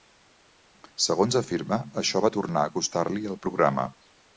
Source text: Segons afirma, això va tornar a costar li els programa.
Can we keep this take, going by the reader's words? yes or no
no